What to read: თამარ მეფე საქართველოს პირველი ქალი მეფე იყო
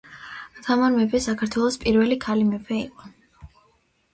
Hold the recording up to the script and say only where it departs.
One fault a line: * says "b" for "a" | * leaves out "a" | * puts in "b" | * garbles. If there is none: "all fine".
all fine